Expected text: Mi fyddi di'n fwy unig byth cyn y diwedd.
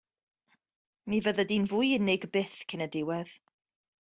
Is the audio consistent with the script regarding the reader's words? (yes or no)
yes